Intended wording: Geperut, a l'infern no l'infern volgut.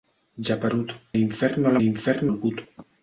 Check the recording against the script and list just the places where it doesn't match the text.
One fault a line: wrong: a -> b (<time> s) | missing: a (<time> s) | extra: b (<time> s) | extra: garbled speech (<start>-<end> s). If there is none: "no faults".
no faults